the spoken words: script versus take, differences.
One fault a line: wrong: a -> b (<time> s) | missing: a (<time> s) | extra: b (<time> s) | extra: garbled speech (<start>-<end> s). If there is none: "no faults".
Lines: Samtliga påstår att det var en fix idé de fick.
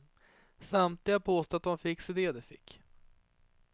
no faults